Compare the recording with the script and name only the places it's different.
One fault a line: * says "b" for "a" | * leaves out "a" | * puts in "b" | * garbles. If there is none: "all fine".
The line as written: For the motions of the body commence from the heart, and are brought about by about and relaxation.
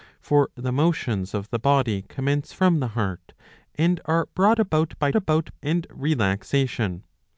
all fine